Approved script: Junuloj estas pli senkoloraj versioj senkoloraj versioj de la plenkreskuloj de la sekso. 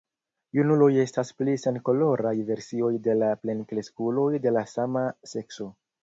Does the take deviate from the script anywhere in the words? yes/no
yes